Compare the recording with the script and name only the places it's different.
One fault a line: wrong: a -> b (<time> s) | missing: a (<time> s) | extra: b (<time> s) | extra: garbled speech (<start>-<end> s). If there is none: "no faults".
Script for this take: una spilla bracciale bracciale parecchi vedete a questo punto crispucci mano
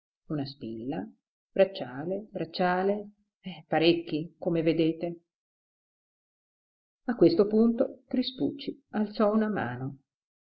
extra: come (4.4 s)
extra: alzò una (8.9 s)